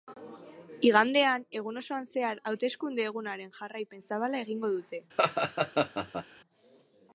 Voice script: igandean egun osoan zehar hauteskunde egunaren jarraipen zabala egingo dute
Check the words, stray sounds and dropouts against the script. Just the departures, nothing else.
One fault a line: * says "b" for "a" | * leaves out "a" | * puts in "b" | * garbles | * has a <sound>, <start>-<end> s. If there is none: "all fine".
* has a laugh, 5.2-6.3 s